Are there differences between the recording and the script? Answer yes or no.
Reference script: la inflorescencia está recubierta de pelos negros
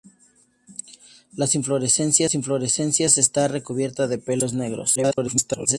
yes